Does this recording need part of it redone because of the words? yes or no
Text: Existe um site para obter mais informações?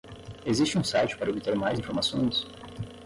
no